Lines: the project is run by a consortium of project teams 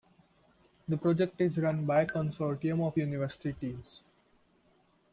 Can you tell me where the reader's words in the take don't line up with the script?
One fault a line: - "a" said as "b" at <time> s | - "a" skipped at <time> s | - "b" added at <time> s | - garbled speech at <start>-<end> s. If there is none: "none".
- "project" said as "university" at 3.0 s